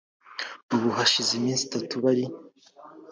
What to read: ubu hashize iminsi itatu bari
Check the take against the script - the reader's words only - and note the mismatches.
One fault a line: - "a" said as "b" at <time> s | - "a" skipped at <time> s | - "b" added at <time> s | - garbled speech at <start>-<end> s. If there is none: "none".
none